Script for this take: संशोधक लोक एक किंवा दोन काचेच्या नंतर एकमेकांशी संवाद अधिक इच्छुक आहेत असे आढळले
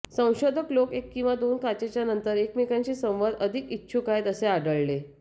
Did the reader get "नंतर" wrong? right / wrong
right